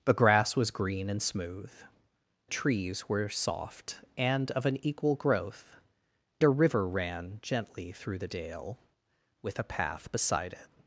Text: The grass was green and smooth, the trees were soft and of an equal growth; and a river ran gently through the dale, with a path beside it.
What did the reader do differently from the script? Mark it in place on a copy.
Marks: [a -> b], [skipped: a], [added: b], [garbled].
The grass was green and smooth, [skipped: the] trees were soft and of an equal growth; [skipped: and] a river ran gently through the dale, with a path beside it.